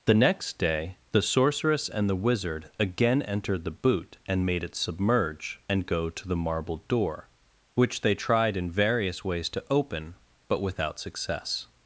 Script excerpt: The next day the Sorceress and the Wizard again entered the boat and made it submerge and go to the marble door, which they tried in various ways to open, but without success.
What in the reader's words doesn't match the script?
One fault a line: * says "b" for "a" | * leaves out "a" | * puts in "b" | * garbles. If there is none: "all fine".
* says "boot" for "boat"